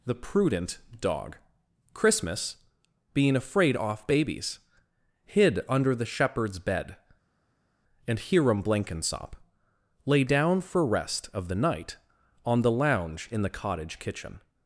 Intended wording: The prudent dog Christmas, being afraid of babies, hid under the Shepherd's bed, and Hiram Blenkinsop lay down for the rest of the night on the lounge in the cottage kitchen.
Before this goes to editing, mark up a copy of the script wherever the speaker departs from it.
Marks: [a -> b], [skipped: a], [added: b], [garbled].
The prudent dog Christmas, being afraid [of -> off] babies, hid under the Shepherd's bed, and Hiram Blenkinsop lay down for [skipped: the] rest of the night on the lounge in the cottage kitchen.